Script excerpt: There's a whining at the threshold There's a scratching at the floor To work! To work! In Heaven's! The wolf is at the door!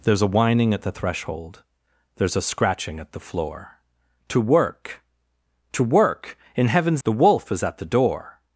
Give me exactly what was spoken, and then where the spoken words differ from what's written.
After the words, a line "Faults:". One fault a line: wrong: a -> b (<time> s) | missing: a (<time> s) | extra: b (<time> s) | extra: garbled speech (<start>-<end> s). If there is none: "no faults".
There's a whining at the threshold There's a scratching at the floor To work! To work! In Heaven's! The wolf is at the door!
Faults:
no faults